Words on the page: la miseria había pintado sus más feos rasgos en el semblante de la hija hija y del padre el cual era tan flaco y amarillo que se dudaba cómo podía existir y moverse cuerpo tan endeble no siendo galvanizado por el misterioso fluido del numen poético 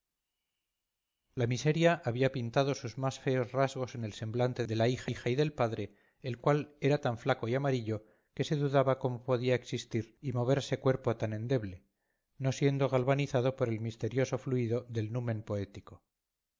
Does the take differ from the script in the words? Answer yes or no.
no